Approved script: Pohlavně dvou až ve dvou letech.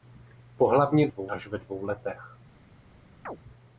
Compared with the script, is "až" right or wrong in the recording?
right